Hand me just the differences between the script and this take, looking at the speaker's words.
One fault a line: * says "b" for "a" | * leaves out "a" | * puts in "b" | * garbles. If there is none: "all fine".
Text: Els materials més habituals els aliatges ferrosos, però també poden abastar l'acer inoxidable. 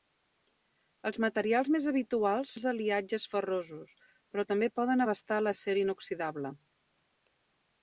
all fine